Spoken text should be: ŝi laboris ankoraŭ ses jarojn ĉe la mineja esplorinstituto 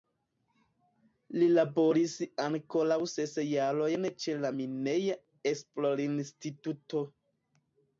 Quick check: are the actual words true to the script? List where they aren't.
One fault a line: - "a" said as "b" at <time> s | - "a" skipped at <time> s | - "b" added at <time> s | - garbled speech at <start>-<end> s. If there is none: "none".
- "ŝi" said as "li" at 1.4 s